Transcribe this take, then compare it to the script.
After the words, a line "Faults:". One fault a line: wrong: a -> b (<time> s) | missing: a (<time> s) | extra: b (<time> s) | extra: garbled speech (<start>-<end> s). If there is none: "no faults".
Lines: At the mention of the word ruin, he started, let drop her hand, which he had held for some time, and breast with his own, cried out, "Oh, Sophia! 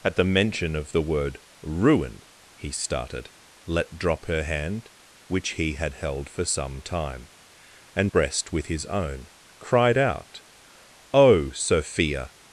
At the mention of the word ruin, he started, let drop her hand, which he had held for some time, and breast with his own, cried out, "Oh, Sophia!
Faults:
no faults